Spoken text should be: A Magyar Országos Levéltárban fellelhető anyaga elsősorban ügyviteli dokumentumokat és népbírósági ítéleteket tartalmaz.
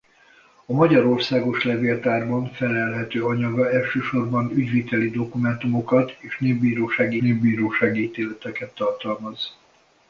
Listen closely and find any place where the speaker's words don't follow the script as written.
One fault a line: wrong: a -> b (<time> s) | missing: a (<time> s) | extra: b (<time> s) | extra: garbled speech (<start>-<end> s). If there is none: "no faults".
extra: népbírósági (7.2 s)